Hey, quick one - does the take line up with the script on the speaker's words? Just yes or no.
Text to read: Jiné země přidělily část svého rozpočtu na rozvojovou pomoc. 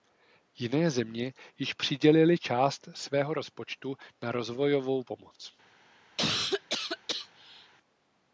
no